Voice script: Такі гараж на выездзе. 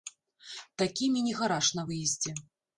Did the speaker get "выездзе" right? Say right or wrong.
right